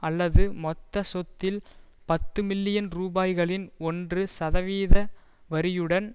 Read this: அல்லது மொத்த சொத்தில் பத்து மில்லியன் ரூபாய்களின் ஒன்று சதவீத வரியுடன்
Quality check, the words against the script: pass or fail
pass